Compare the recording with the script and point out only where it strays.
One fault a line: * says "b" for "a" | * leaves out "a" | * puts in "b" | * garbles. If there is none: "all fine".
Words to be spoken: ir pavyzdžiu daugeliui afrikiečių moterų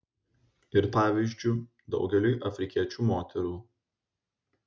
all fine